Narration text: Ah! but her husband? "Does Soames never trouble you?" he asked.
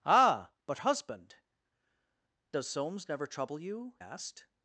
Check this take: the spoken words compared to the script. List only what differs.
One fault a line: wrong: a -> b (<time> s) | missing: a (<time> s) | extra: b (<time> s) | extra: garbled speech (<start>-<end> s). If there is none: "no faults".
missing: her (0.8 s)
missing: he (3.9 s)